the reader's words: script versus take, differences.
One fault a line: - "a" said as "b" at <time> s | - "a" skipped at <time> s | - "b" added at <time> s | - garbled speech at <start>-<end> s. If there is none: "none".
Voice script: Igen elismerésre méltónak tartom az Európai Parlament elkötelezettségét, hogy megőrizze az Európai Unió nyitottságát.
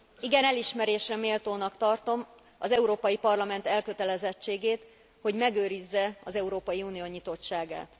none